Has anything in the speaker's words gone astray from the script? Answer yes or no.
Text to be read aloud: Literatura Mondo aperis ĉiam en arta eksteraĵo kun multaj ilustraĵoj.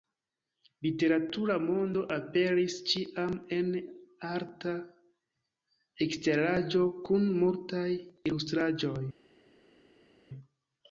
no